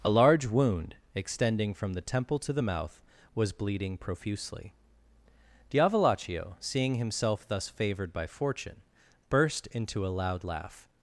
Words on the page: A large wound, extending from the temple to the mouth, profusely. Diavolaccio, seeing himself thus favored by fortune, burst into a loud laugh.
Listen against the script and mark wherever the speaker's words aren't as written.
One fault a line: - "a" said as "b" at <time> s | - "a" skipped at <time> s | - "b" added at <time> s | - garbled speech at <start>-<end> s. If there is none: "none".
- "was bleeding" added at 3.3 s